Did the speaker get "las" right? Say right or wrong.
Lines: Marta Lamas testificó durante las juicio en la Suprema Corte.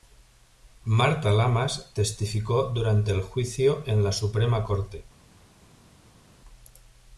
wrong